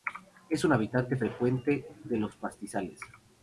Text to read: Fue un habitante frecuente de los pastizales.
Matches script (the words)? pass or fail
fail